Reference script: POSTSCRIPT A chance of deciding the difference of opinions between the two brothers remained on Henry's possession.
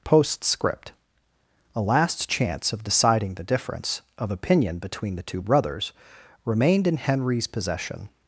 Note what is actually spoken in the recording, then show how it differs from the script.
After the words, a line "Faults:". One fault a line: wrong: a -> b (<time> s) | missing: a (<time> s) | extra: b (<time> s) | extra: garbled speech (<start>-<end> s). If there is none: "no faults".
POSTSCRIPT A last chance of deciding the difference of opinion between the two brothers remained in Henry's possession.
Faults:
extra: last (1.8 s)
wrong: opinions -> opinion (4.3 s)
wrong: on -> in (6.9 s)